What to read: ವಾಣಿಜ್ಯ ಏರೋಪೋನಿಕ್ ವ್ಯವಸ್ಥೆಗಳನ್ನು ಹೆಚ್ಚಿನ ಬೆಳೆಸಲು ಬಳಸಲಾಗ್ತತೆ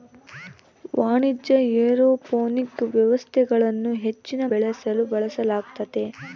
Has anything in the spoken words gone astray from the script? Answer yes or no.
no